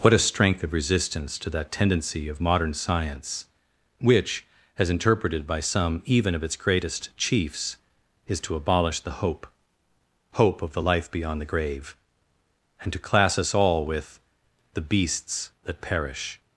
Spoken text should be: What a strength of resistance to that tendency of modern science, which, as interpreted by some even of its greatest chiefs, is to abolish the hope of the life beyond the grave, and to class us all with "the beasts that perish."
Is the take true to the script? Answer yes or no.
no